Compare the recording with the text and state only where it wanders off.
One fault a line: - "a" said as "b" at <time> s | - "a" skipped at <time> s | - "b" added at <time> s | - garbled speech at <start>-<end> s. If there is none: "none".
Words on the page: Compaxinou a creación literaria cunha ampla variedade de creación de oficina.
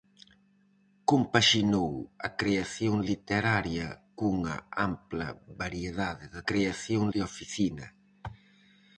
none